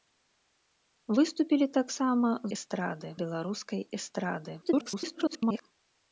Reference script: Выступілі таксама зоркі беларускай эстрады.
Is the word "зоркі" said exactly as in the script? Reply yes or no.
no